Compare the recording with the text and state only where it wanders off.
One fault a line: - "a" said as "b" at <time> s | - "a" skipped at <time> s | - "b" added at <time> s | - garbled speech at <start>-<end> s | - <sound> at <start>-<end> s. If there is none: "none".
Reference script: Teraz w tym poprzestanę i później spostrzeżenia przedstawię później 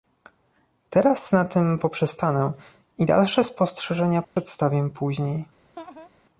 - "w" said as "na" at 1.3 s
- "później" said as "dalsze" at 3.0 s
- dropout at 4.2-4.4 s
- laugh at 5.8-6.1 s